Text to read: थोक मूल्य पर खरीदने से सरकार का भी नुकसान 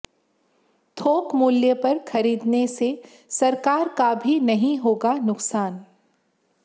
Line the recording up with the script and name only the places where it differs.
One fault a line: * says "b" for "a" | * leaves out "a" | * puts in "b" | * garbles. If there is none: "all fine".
* puts in "नहीं होगा"